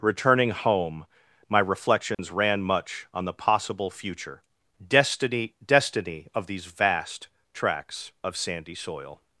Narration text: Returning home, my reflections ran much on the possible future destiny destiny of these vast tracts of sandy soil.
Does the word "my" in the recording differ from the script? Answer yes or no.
no